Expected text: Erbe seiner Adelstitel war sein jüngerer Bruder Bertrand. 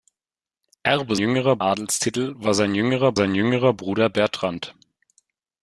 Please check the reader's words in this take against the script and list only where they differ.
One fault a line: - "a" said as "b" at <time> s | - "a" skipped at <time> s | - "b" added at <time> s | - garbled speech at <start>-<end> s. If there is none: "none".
- "seiner" said as "jüngerer" at 1.2 s
- "sein jüngerer" added at 3.1 s